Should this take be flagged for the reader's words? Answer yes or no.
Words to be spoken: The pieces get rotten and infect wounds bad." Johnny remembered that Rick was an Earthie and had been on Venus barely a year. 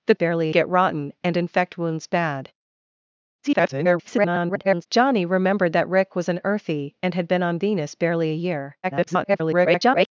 yes